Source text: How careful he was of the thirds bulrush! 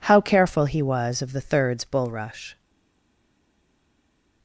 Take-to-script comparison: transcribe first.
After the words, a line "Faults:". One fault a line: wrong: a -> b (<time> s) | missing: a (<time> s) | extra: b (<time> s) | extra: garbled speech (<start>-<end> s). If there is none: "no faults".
How careful he was of the thirds bulrush!
Faults:
no faults